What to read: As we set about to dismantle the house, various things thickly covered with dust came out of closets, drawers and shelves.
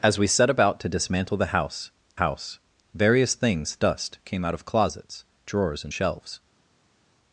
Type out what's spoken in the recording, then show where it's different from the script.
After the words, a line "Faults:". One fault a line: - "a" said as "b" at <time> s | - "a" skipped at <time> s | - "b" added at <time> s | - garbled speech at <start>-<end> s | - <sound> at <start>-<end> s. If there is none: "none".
As we set about to dismantle the house house, various things dust came out of closets, drawers and shelves.
Faults:
- "house" added at 2.2 s
- "thickly covered with" skipped at 3.7 s